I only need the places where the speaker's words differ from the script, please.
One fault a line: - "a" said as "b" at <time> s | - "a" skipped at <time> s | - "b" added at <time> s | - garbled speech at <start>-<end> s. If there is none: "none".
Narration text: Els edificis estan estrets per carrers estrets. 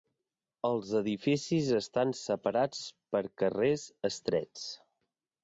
- "estrets" said as "separats" at 2.2 s